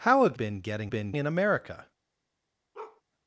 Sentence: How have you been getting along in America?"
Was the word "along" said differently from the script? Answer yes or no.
yes